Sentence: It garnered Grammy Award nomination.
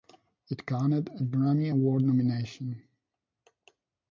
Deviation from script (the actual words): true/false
true